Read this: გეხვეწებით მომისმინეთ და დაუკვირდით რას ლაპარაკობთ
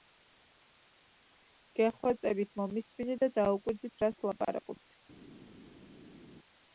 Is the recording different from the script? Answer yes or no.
no